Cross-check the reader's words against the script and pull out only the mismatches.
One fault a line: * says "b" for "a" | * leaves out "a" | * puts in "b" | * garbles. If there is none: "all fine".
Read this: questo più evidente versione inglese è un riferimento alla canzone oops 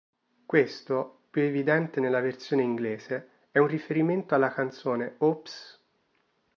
* puts in "nella"